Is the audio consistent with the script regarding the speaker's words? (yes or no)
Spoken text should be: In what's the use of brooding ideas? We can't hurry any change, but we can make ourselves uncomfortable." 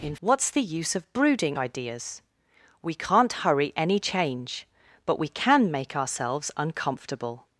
yes